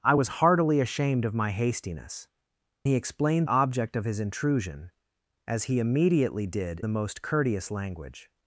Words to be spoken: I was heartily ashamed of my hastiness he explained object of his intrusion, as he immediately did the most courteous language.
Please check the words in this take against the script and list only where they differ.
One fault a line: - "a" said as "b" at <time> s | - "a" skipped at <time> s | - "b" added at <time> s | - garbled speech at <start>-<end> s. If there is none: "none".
none